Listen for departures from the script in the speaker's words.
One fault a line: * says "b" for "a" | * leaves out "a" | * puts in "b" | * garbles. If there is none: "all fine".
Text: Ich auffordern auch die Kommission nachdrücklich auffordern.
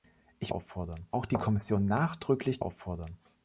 all fine